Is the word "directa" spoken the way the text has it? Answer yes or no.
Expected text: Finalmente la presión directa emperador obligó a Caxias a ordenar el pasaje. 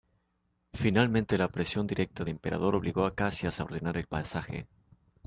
yes